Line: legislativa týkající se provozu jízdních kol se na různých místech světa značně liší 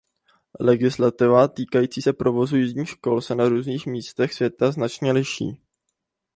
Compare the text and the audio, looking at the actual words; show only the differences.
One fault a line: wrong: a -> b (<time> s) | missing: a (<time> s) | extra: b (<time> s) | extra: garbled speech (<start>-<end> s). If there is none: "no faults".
no faults